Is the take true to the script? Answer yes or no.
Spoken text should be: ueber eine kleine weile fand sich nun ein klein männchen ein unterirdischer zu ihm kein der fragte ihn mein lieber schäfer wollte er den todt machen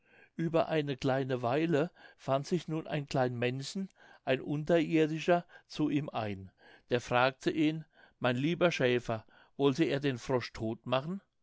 no